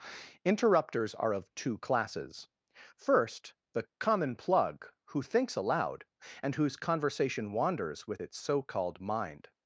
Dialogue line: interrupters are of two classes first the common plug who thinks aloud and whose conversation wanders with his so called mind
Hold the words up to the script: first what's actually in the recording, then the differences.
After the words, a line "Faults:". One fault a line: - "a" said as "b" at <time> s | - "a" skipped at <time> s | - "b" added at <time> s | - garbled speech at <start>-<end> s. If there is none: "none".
interrupters are of two classes first the common plug who thinks aloud and whose conversation wanders with its so called mind
Faults:
- "his" said as "its" at 8.2 s